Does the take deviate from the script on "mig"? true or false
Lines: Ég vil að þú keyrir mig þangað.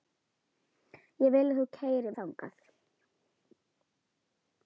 true